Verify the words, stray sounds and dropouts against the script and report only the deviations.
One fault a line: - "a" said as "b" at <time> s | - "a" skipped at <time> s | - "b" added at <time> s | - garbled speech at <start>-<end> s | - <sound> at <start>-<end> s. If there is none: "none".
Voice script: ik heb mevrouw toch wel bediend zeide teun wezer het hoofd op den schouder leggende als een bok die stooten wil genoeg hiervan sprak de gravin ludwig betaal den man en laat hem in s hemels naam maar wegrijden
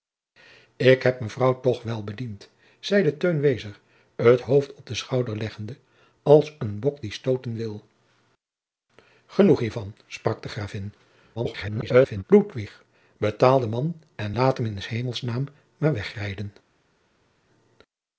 - garbled speech at 11.4-12.2 s